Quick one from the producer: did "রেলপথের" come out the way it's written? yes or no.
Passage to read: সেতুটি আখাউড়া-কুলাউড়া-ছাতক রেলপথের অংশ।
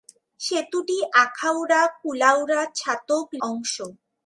no